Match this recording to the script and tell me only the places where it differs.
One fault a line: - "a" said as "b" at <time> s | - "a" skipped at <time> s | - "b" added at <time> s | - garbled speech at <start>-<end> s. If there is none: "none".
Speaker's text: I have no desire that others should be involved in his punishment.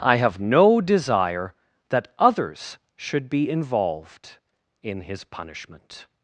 none